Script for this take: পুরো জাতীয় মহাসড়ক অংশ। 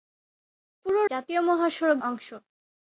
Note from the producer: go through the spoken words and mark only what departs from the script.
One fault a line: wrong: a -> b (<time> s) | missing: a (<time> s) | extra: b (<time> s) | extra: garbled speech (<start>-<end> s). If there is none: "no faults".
no faults